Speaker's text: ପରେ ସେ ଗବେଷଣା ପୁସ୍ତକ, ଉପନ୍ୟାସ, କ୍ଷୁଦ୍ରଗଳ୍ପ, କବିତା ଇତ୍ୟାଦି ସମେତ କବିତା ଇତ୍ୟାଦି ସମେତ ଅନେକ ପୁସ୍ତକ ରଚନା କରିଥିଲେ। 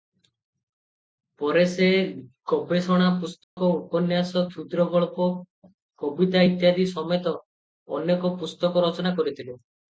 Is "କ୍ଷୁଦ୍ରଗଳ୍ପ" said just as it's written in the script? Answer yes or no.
yes